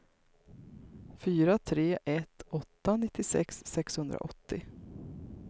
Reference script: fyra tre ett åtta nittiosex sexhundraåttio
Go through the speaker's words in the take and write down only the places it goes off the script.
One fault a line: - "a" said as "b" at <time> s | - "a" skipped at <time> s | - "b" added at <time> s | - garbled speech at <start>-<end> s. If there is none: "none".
none